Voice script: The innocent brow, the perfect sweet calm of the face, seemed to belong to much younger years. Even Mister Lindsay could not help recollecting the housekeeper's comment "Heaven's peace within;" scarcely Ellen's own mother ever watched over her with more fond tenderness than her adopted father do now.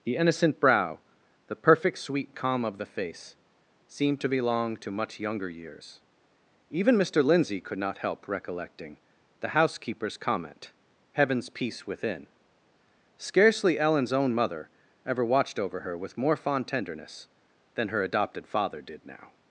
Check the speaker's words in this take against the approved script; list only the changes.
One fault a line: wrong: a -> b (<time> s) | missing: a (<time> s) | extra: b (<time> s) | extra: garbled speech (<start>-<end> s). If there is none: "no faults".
wrong: do -> did (18.8 s)